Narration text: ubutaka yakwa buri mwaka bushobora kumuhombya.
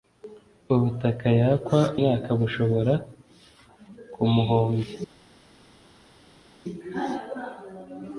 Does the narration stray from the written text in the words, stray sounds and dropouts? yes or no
yes